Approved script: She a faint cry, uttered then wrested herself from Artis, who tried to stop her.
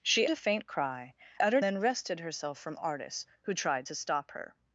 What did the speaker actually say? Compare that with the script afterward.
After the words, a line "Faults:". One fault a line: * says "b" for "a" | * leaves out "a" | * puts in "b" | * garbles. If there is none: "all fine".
She a faint cry, uttered then wrested herself from Artis, who tried to stop her.
Faults:
all fine